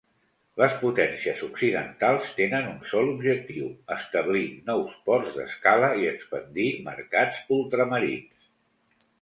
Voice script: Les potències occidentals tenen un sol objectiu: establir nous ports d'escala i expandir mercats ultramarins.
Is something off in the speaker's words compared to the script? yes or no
no